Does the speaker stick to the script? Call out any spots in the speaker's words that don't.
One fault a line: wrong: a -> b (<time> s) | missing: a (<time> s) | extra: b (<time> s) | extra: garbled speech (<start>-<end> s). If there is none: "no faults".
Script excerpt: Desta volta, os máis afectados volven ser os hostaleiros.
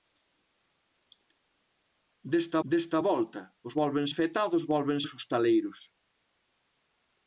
extra: desta (2.7 s)
wrong: máis -> volven (3.8 s)
missing: ser (5.0 s)